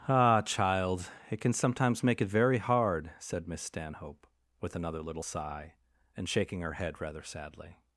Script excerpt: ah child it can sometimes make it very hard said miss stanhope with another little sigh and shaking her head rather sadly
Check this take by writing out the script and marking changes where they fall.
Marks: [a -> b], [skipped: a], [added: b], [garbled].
ah child it can sometimes make it very hard said miss stanhope with another little sigh and shaking her head rather sadly